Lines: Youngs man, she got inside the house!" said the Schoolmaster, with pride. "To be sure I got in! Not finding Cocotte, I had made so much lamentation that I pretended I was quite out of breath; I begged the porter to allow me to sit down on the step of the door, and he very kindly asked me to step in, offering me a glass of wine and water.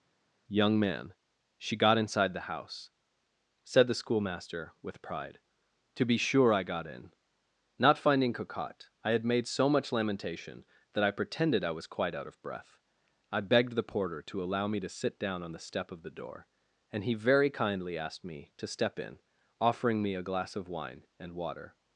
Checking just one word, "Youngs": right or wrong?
wrong